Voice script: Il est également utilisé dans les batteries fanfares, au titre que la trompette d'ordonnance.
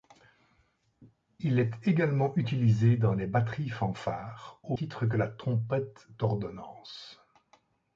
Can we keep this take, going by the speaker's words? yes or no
yes